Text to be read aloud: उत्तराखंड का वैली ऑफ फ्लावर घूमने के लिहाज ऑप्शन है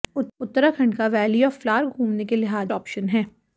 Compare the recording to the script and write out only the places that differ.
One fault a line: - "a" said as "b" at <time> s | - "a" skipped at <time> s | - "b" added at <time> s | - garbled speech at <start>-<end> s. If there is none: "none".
none